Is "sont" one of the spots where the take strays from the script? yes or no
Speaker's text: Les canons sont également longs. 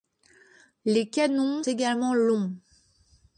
yes